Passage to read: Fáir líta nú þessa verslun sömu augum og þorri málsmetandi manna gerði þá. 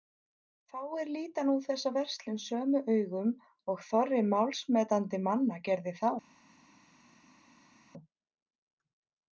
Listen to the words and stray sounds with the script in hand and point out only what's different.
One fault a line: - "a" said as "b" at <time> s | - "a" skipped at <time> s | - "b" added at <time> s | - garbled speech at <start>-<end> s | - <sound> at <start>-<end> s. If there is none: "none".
none